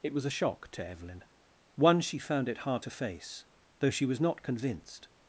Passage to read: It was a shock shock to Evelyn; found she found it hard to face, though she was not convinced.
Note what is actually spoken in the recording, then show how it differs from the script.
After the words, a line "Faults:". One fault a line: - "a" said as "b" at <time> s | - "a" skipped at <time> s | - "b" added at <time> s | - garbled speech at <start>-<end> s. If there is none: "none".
It was a shock to Evelyn; one she found it hard to face, though she was not convinced.
Faults:
- "shock" skipped at 0.7 s
- "found" said as "one" at 1.7 s